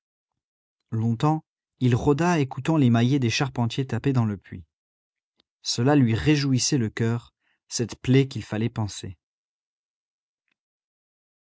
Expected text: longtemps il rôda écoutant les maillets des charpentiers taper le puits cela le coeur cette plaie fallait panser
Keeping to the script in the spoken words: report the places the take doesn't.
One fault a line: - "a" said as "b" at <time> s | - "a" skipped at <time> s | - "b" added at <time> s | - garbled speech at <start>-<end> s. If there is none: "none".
- "dans" added at 4.1 s
- "lui réjouissait" added at 6.0 s
- "qu'il" added at 8.3 s